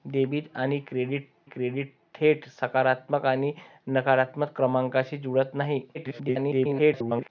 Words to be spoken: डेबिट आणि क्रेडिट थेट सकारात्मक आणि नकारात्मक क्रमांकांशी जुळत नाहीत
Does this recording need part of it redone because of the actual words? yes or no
yes